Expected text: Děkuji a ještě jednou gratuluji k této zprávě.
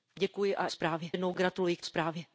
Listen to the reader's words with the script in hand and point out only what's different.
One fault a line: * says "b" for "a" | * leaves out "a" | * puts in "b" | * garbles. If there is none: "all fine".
* says "zprávě" for "ještě"
* leaves out "této"